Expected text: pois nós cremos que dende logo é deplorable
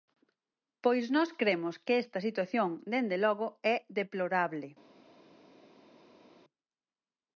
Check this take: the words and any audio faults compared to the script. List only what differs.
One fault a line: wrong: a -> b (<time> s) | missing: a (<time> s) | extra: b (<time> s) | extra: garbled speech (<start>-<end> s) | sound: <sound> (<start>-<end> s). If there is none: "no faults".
extra: esta situación (2.0 s)